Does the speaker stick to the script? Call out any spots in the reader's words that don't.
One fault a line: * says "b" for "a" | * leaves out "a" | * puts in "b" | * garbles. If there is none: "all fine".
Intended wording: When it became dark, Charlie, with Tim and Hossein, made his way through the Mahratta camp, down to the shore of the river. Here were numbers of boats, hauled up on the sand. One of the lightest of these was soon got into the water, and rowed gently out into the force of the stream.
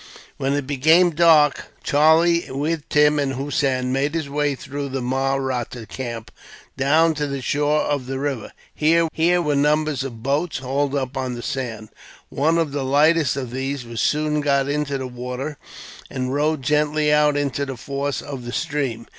* puts in "here"